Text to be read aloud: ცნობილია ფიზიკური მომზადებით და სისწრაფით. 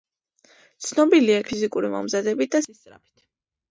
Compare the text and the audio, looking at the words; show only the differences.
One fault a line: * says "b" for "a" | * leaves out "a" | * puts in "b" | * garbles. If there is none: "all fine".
all fine